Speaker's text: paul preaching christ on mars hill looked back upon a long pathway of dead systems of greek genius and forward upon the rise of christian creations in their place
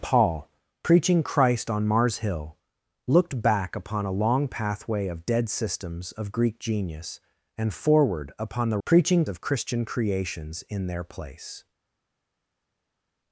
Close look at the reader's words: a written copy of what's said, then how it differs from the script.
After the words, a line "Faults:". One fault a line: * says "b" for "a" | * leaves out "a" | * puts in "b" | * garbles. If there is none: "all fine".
paul preaching christ on mars hill looked back upon a long pathway of dead systems of greek genius and forward upon the preaching of christian creations in their place
Faults:
* says "preaching" for "rise"